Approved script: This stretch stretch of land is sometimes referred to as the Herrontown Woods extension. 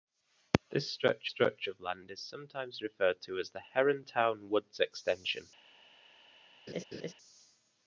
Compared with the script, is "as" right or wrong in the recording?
right